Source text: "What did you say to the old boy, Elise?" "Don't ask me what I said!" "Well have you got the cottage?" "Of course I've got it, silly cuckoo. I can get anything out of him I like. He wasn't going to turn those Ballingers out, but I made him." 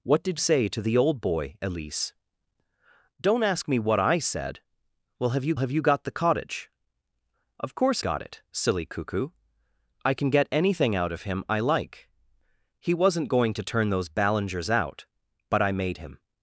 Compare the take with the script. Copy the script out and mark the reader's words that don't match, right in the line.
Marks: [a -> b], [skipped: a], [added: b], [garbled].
"What did [skipped: you] say to the old boy, Elise?" "Don't ask me what I said!" "Well have you [added: have you] got the cottage?" "Of course [skipped: I've] got it, silly cuckoo. I can get anything out of him I like. He wasn't going to turn those Ballingers out, but I made him."